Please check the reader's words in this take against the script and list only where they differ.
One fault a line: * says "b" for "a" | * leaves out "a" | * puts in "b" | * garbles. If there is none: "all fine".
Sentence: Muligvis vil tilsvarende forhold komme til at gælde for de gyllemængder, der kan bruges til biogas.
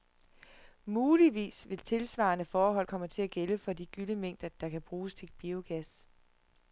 all fine